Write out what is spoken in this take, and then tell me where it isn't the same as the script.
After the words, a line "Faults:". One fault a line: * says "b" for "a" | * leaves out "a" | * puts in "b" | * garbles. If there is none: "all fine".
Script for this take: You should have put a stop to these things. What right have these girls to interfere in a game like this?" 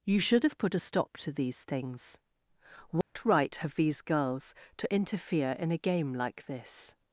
You should have put a stop to these things. What right have these girls to interfere in a game like this?"
Faults:
all fine